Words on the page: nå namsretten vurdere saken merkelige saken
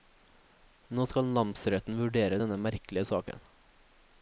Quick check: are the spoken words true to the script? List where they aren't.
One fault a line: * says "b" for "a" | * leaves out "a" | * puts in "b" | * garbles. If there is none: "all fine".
* puts in "skal"
* says "denne" for "saken"